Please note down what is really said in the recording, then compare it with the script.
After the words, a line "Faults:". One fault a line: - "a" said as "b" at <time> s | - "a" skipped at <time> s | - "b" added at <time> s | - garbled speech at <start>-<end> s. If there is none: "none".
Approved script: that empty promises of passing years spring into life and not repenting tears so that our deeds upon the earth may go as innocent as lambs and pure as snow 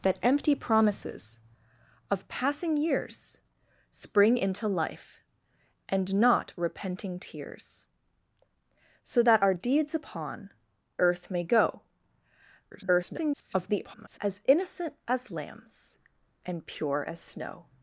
that empty promises of passing years spring into life and not repenting tears so that our deeds upon earth may go [garbled] as innocent as lambs and pure as snow
Faults:
- "the" skipped at 10.5 s
- garbled speech at 12.7-14.2 s